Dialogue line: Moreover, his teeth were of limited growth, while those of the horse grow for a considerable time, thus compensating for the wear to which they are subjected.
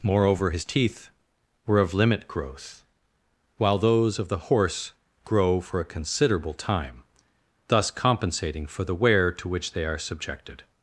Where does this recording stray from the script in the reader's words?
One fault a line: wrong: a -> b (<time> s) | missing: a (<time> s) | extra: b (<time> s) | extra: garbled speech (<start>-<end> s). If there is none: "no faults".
wrong: limited -> limit (1.9 s)